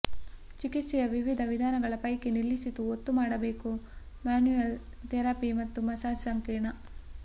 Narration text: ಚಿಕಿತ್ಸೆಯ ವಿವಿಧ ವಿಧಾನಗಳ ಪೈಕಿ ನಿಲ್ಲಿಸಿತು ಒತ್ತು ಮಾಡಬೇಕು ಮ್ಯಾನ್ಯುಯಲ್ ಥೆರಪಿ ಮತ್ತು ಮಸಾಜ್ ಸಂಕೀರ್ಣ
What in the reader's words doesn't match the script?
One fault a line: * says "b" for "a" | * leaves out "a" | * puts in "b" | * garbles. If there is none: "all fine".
all fine